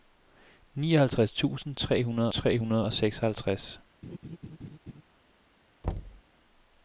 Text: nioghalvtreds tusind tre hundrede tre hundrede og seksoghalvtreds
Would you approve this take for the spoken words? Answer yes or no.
yes